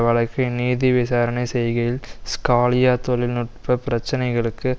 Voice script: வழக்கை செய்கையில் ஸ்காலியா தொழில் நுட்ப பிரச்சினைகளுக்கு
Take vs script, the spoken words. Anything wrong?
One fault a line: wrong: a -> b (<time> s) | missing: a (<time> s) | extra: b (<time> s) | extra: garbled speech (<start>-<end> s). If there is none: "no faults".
extra: நீதி விசாரணை (0.5 s)